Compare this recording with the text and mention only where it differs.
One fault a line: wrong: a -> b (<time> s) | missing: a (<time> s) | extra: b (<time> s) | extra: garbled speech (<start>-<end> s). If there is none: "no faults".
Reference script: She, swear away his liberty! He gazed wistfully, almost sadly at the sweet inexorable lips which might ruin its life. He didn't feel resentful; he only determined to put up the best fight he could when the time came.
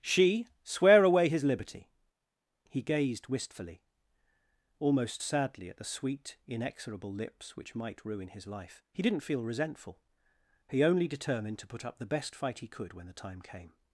wrong: its -> his (8.3 s)